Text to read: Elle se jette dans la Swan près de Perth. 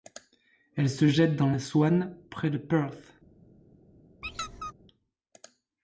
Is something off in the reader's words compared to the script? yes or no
no